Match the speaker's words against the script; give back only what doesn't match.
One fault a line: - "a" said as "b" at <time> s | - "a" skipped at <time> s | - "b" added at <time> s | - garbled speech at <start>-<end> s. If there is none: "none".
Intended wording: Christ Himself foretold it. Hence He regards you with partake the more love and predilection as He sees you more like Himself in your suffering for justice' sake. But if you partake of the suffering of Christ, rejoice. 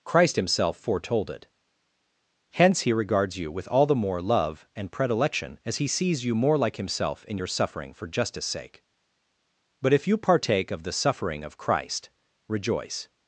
- "partake" said as "all" at 3.7 s